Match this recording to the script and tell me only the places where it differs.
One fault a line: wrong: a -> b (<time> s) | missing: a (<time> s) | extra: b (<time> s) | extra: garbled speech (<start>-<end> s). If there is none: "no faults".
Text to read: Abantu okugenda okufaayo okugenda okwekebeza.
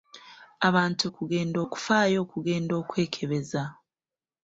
no faults